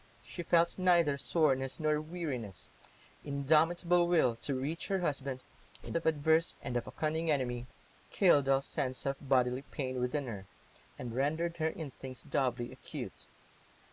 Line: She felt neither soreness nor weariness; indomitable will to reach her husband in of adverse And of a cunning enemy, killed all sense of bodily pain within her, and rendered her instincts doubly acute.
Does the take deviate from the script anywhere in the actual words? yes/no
no